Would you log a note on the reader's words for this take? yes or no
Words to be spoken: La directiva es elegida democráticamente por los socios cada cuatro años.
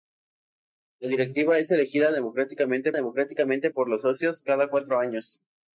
yes